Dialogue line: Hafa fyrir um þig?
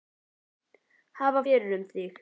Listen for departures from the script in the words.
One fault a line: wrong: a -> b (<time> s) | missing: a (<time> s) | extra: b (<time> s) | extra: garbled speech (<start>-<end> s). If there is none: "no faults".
no faults